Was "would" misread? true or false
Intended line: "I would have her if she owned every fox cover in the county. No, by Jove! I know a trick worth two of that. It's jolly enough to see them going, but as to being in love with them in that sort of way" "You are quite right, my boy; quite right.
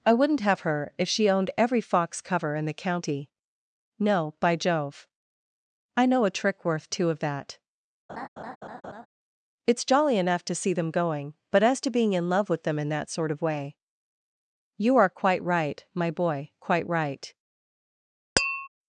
true